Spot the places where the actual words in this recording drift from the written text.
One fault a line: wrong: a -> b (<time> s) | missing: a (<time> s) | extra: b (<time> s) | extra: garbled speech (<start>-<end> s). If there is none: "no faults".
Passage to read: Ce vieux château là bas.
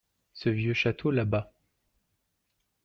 no faults